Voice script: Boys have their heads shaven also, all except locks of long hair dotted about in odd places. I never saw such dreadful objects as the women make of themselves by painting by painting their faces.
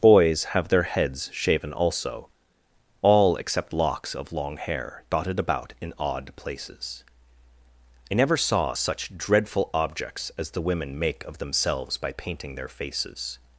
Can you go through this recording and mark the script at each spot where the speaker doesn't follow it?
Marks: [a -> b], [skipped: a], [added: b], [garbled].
Boys have their heads shaven also, all except locks of long hair dotted about in odd places. I never saw such dreadful objects as the women make of themselves by painting [skipped: by painting] their faces.